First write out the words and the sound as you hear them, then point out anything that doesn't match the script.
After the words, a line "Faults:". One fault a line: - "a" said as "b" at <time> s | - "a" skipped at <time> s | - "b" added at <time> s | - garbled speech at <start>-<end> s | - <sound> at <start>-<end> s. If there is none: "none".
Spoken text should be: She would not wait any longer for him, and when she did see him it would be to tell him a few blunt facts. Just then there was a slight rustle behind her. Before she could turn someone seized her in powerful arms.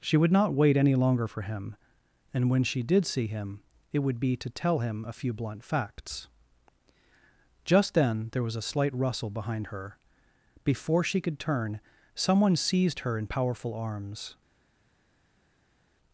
She would not wait any longer for him, and when she did see him it would be to tell him a few blunt facts. Just then there was a slight rustle behind her. Before she could turn someone seized her in powerful arms.
Faults:
none